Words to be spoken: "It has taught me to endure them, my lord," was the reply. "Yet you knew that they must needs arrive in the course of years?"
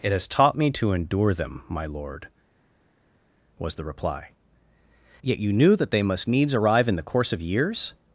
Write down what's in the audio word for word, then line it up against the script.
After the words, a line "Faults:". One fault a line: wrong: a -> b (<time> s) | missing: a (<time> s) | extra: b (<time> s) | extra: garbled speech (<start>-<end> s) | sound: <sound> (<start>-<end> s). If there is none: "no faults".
"It has taught me to endure them, my lord," was the reply. "Yet you knew that they must needs arrive in the course of years?"
Faults:
no faults